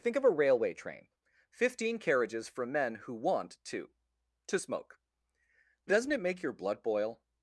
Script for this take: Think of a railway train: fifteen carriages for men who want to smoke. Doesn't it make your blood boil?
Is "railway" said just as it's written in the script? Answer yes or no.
yes